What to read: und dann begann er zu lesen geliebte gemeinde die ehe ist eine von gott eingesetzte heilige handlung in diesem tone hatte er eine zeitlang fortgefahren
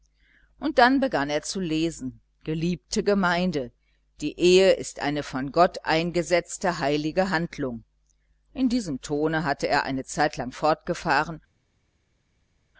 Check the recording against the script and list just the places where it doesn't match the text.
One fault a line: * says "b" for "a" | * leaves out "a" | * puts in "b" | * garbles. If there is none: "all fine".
all fine